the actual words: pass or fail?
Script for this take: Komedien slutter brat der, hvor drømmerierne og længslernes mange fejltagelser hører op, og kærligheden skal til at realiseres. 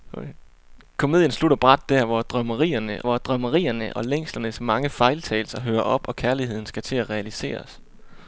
fail